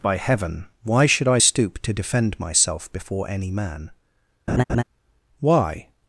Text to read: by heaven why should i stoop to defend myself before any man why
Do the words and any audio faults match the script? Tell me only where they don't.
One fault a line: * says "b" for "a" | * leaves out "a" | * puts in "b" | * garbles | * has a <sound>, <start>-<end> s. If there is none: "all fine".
* has a laugh, 4.5-4.8 s